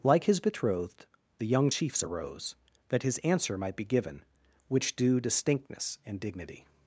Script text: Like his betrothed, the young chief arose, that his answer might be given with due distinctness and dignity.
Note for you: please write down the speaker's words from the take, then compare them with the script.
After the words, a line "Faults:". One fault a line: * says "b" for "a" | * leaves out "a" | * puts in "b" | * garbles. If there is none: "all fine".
Like his betrothed, the young chiefs arose, that his answer might be given which due distinctness and dignity.
Faults:
* says "chiefs" for "chief"
* says "which" for "with"